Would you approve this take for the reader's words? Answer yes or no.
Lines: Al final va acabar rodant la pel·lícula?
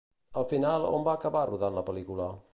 no